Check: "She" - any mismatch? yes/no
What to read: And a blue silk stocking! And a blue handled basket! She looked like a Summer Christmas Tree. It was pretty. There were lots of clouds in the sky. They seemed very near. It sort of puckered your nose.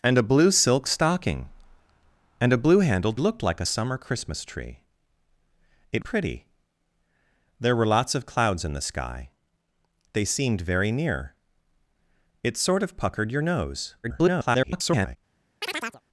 yes